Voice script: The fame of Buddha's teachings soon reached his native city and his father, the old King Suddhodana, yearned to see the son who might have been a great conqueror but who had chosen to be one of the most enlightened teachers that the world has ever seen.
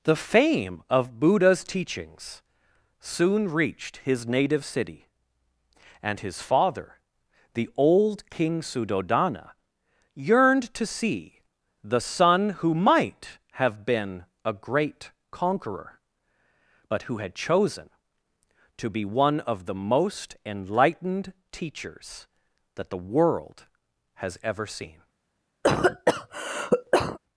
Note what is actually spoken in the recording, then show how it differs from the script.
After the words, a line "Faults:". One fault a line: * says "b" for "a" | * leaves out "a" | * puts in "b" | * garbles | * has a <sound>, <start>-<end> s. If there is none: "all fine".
The fame of Buddha's teachings soon reached his native city and his father, the old King Suddhodana, yearned to see the son who might have been a great conqueror but who had chosen to be one of the most enlightened teachers that the world has ever seen.
Faults:
* has a cough, 25.6-27.2 s